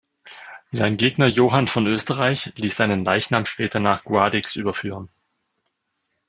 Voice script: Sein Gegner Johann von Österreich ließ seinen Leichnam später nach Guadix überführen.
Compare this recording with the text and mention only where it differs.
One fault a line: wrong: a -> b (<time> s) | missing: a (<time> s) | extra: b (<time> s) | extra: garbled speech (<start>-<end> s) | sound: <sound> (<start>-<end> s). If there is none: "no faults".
no faults